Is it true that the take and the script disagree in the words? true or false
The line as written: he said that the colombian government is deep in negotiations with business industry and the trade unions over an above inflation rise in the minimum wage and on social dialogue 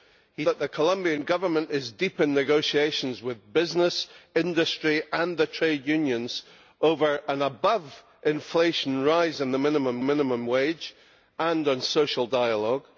true